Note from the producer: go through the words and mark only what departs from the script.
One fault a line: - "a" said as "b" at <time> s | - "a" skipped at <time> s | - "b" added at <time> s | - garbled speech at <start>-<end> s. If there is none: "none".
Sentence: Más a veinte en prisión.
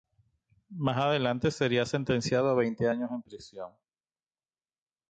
- "adelante sería sentenciado" added at 1.0 s
- "años" added at 2.9 s